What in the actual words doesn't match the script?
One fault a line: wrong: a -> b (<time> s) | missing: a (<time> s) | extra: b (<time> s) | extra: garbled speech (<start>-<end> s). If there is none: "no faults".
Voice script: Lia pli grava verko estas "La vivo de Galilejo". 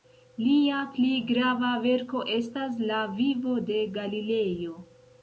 no faults